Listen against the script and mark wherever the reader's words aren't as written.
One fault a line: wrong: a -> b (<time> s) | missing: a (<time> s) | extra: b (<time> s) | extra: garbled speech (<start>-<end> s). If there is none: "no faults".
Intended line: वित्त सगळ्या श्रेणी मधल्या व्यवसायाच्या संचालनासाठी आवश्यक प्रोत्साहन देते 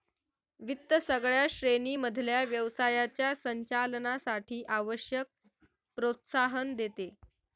no faults